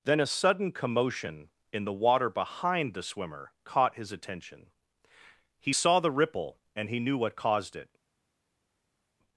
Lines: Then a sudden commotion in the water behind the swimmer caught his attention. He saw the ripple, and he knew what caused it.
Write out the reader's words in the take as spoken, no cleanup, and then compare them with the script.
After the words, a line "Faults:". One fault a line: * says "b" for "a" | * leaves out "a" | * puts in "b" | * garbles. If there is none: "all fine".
Then a sudden commotion in the water behind the swimmer caught his attention. He saw the ripple, and he knew what caused it.
Faults:
all fine